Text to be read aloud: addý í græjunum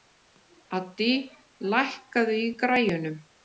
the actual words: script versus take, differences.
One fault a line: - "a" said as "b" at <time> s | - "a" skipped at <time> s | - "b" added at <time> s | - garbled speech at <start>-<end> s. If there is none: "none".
- "lækkaðu" added at 1.8 s